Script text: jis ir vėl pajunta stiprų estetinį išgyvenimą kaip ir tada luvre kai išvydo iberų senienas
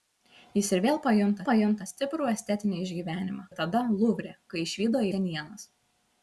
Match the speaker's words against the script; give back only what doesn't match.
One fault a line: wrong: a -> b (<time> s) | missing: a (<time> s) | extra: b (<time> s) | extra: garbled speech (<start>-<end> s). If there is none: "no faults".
extra: pajunta (1.5 s)
missing: kaip (3.4 s)
missing: iberų (5.0 s)